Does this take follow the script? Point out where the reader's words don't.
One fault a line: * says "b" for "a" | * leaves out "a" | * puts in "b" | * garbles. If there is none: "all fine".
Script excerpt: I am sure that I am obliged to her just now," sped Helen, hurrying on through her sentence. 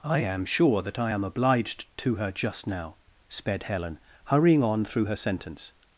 all fine